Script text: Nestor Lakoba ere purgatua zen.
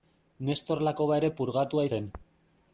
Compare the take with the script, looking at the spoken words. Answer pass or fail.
pass